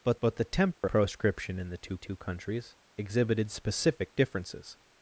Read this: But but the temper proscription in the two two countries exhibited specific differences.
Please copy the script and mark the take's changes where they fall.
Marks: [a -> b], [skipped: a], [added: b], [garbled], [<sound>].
But but the temper [dropout] proscription in the two two countries exhibited specific differences.